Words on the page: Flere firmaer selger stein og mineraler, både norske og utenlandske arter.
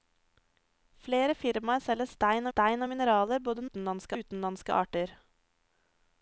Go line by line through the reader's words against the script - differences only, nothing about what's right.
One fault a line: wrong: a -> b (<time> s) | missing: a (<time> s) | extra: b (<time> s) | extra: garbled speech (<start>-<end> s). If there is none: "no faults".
extra: stein (2.5 s)
wrong: norske -> utenlandske (3.7 s)